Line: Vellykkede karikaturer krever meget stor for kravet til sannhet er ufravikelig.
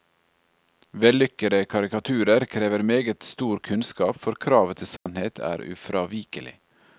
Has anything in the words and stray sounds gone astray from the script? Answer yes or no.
yes